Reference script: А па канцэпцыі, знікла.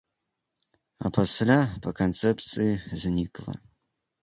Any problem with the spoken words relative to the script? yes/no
yes